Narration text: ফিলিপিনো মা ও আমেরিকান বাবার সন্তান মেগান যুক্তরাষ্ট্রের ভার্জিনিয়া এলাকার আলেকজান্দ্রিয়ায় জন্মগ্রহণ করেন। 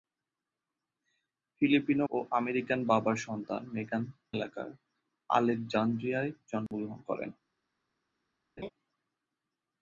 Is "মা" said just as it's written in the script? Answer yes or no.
no